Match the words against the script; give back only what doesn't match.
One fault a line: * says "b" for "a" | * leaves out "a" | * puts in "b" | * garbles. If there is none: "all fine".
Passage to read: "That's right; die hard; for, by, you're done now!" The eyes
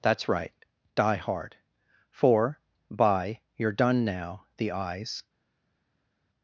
all fine